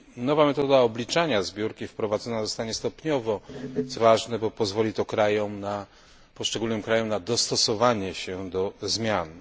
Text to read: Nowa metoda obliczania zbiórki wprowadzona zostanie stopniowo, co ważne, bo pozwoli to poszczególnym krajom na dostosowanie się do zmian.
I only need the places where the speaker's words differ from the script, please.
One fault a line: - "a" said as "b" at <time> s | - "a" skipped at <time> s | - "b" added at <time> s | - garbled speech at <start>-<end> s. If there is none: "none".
none